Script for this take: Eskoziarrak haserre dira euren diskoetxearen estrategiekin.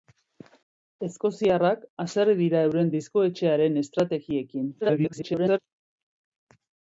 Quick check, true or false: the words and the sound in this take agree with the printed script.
false